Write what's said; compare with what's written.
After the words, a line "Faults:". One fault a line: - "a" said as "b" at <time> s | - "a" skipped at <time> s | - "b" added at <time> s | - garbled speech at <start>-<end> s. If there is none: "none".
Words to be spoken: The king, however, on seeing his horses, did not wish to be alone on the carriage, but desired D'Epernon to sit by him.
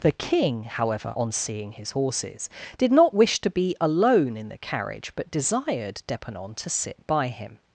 The king, however, on seeing his horses, did not wish to be alone in the carriage, but desired D'Epernon to sit by him.
Faults:
- "on" said as "in" at 4.4 s